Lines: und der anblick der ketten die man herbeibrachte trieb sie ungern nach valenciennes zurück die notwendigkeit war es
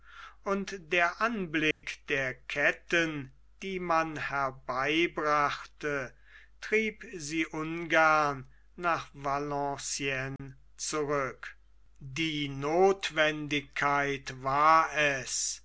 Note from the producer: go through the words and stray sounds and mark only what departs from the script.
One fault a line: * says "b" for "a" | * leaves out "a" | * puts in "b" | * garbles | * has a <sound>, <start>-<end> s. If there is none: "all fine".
* has a dropout, 1.7-1.8 s
* has a dropout, 10.4-10.4 s